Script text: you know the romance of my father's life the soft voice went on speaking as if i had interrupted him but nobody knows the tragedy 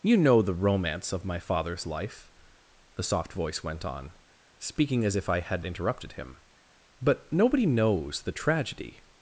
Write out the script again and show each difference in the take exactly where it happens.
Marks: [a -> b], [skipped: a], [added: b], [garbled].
you know the romance of my father's life the soft voice went on speaking as if i had interrupted him but nobody knows the tragedy